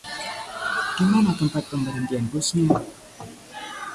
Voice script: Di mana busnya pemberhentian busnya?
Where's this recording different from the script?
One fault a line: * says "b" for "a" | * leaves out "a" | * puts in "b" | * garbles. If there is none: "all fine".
* says "tempat" for "busnya"